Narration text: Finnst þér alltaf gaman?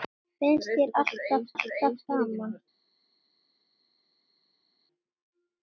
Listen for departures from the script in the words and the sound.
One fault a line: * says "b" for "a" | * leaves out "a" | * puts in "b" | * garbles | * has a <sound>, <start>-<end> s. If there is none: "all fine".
* puts in "alltaf"